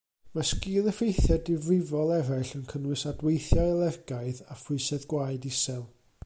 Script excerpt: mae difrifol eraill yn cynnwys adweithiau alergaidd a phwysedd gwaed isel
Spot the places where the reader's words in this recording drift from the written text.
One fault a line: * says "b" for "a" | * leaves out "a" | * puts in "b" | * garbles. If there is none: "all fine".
* puts in "sgil effeithiau"